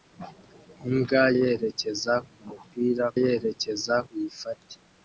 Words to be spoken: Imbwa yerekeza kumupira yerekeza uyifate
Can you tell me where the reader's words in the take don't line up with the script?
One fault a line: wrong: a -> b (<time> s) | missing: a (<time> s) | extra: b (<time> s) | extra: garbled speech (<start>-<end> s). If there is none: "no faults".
no faults